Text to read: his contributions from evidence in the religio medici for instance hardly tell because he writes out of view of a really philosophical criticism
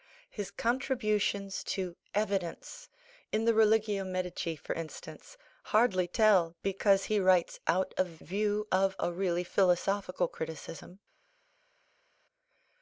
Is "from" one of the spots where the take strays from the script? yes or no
yes